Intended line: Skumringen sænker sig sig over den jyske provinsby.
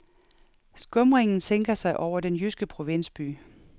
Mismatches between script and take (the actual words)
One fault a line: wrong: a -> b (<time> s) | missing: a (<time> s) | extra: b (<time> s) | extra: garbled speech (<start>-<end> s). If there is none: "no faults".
missing: sig (2.0 s)